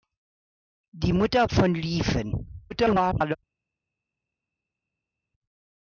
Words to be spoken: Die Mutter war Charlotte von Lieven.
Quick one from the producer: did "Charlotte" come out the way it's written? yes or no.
no